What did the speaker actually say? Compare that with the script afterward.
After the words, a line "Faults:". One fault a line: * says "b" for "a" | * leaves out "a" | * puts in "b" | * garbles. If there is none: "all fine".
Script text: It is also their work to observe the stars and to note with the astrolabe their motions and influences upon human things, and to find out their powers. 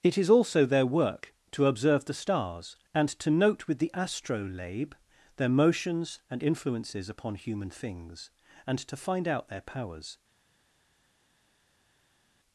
It is also their work to observe the stars and to note with the astrolabe their motions and influences upon human things, and to find out their powers.
Faults:
all fine